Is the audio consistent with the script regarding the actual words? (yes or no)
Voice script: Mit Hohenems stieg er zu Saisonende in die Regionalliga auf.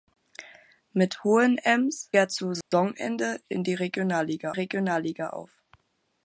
no